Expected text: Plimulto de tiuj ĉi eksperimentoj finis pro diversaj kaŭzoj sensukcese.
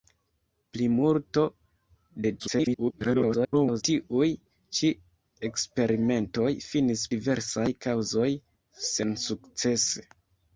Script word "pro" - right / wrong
wrong